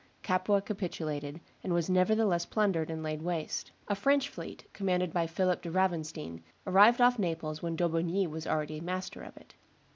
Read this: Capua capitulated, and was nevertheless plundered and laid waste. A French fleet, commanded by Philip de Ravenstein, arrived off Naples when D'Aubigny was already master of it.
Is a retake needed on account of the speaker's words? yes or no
no